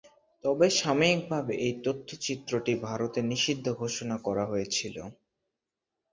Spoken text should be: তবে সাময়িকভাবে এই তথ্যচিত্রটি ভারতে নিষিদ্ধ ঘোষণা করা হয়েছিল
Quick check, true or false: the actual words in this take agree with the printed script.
true